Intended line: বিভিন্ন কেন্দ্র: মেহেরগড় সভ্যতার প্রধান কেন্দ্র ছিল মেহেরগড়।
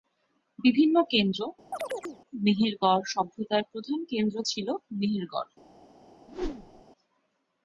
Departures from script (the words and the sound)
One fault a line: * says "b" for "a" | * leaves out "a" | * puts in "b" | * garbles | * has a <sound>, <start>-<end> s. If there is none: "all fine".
* has a chirp, 1.7-2.2 s
* has a whoosh, 6.3-6.8 s